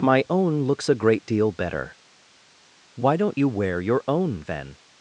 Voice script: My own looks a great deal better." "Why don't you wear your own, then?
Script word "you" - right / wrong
right